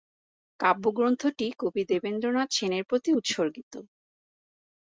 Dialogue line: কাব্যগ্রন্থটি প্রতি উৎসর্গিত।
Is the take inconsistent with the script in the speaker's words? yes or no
yes